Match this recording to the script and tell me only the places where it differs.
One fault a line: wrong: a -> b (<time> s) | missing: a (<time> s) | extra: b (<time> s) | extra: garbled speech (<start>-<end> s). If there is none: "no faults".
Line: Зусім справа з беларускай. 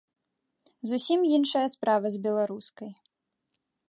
extra: іншая (1.4 s)